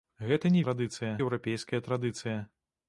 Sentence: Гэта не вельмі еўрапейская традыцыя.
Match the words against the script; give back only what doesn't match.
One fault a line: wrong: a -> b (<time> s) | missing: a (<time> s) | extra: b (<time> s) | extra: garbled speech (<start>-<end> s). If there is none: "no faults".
wrong: вельмі -> традыцыя (0.7 s)